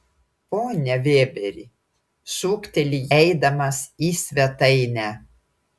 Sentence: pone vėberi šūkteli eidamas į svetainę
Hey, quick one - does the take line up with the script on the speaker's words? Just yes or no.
yes